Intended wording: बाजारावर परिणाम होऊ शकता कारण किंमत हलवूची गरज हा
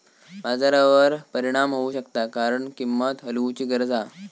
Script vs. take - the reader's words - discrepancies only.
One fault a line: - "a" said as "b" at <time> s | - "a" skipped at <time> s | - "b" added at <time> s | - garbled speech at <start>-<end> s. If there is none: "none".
none